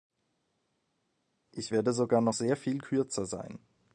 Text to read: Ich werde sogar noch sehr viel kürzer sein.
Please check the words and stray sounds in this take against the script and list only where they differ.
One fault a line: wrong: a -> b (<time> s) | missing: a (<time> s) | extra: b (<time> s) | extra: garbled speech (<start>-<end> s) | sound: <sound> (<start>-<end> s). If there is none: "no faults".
no faults